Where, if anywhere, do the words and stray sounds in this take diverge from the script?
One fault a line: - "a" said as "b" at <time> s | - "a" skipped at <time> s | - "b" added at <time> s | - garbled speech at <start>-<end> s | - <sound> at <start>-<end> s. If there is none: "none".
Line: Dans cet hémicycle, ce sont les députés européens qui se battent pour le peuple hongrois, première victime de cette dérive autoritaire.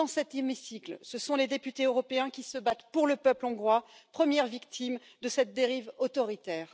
none